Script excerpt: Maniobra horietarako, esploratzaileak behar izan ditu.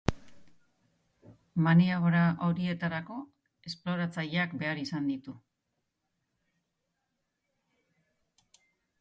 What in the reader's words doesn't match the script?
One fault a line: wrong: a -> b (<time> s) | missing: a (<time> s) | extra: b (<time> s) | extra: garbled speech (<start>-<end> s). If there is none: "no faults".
no faults